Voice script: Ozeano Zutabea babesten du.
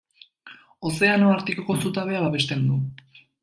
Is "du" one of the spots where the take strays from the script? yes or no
no